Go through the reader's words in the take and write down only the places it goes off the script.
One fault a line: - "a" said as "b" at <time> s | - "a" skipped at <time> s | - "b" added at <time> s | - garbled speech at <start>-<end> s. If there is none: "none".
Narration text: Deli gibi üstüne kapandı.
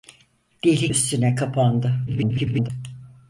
- "gibi" skipped at 0.9 s
- garbled speech at 2.1-2.7 s